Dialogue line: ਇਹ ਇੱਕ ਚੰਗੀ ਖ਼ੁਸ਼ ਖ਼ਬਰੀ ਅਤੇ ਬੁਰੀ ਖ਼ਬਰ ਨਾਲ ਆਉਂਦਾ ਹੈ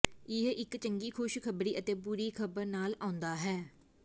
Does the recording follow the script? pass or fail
pass